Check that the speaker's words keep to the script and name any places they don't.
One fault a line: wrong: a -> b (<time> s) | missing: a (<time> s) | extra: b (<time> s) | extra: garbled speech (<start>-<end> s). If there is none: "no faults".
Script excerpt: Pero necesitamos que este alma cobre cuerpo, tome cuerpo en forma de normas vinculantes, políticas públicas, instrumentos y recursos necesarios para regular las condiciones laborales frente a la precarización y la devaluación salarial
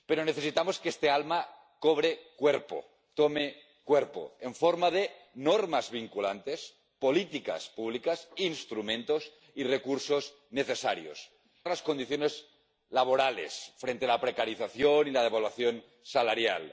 missing: para regular (11.3 s)